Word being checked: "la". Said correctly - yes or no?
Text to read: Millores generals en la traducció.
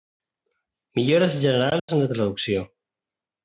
yes